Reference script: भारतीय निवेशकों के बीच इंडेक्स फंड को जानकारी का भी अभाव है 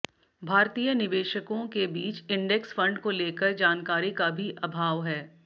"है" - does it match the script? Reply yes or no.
yes